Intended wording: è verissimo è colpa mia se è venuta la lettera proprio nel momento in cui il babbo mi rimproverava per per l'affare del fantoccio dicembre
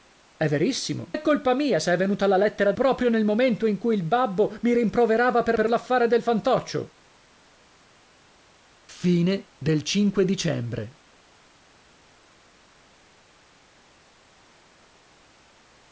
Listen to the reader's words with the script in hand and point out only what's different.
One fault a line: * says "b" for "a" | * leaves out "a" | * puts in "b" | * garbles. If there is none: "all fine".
all fine